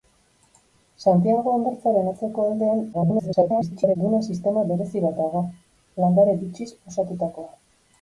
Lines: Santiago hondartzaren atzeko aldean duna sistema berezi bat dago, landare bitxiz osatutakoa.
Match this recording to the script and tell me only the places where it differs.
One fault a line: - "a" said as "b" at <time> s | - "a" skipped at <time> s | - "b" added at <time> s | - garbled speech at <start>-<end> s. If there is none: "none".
- garbled speech at 2.9-4.0 s